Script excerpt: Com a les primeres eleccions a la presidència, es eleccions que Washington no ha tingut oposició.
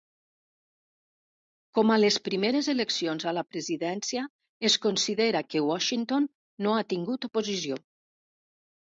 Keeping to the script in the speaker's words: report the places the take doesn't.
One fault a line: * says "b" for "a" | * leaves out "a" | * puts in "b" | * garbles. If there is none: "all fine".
* says "considera" for "eleccions"